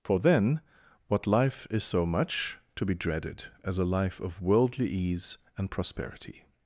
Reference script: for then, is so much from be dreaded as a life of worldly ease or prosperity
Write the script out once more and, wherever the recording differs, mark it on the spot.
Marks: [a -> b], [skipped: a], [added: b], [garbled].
for then, [added: what life] is so much [from -> to] be dreaded as a life of worldly ease [or -> and] prosperity